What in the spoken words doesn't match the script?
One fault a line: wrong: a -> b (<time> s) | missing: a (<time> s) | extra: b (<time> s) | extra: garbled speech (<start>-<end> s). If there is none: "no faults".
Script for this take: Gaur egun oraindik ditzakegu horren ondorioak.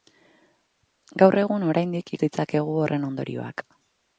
no faults